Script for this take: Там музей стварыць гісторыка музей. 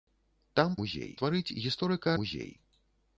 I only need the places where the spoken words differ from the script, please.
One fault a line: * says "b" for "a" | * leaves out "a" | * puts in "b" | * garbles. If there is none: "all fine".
all fine